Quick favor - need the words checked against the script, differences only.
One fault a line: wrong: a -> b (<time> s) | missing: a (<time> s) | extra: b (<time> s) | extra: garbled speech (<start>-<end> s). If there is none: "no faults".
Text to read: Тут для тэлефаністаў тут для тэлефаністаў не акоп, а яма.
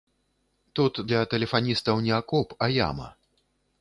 missing: тут для тэлефаністаў (2.0 s)